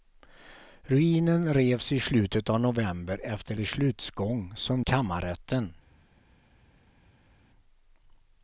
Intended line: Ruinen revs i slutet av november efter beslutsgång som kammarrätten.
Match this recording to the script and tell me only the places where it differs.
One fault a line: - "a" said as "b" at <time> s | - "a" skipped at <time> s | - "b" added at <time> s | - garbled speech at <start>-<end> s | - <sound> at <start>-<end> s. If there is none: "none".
none